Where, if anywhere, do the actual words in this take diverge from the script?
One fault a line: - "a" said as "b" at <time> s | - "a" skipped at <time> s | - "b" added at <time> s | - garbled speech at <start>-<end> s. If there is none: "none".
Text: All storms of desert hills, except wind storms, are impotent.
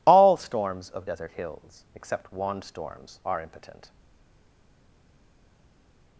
- "wind" said as "wand" at 2.3 s